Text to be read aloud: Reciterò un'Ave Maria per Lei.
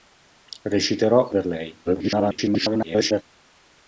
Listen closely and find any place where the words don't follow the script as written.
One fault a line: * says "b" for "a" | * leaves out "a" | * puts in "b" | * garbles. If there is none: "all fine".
* leaves out "un'Ave Maria"
* garbles